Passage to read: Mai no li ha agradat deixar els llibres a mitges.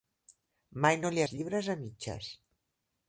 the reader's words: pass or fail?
fail